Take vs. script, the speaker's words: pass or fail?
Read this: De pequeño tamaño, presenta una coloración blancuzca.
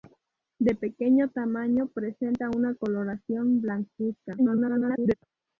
fail